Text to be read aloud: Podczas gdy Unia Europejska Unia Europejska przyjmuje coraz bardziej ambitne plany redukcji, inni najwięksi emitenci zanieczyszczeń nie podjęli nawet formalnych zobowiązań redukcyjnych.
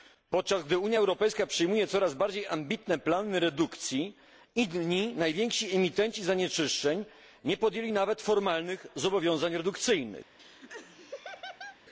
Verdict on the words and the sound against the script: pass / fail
fail